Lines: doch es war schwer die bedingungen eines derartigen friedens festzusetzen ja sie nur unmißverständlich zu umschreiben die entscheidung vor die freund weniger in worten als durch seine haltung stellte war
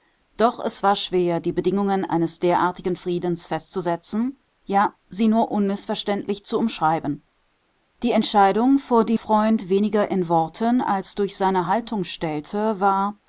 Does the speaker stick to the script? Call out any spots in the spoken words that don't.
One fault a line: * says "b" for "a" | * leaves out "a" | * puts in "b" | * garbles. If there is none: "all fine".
all fine